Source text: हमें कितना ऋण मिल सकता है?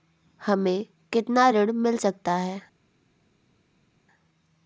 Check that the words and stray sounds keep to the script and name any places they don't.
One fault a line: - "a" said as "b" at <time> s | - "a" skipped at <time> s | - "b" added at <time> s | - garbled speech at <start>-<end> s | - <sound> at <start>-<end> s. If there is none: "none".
none